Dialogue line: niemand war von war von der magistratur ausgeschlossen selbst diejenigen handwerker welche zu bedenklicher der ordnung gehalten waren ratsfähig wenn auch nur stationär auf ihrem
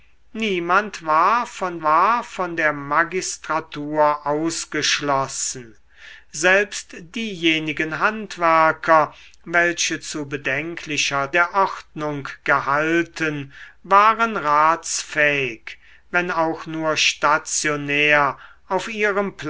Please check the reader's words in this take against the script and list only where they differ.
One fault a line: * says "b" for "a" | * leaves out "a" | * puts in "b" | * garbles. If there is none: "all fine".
all fine